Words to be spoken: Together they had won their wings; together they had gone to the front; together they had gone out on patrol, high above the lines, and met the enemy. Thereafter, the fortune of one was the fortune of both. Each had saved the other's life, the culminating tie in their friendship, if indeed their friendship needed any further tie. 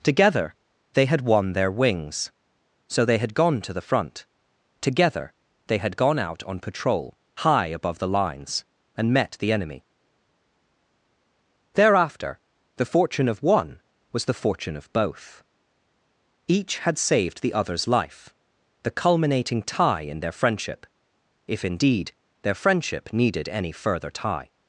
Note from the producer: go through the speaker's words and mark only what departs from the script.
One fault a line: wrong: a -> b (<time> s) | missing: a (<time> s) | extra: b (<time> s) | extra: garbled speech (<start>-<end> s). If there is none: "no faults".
wrong: together -> so (2.9 s)